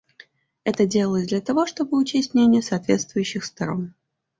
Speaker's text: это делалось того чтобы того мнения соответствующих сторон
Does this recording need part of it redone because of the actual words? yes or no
yes